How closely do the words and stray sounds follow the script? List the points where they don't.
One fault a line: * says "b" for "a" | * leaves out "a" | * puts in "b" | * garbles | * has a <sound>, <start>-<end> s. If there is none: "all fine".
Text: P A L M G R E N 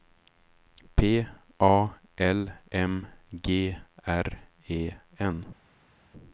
all fine